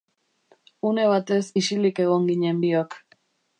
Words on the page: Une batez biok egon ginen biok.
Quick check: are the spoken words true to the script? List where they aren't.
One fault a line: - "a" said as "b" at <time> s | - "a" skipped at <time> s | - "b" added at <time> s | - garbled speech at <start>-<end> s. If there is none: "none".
- "biok" said as "isilik" at 1.6 s